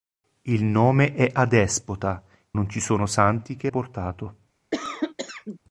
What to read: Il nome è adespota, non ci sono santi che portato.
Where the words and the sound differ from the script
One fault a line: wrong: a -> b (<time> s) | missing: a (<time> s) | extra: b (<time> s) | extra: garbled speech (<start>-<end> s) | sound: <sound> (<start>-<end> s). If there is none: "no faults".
sound: cough (4.7-5.6 s)